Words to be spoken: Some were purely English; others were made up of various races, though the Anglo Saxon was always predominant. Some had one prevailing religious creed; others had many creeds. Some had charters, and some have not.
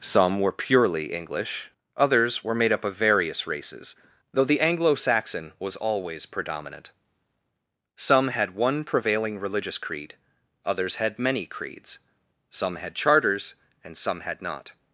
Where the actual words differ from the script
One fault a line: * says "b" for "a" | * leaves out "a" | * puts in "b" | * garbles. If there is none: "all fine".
* says "had" for "have"